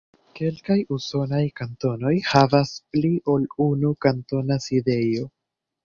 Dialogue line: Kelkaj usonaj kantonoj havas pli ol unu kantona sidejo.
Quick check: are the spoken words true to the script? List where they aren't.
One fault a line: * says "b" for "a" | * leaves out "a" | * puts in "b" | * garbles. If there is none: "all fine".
all fine